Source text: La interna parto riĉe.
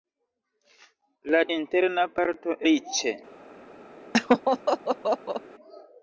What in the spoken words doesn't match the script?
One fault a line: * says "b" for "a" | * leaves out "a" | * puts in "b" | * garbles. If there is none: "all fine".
all fine